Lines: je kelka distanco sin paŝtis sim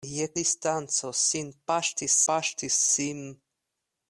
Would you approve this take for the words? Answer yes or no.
no